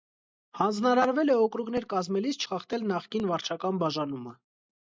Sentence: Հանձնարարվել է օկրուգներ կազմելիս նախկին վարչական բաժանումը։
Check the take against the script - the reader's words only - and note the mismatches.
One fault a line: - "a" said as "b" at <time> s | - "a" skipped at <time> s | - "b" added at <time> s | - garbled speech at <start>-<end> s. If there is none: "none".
- "չխախտել" added at 2.4 s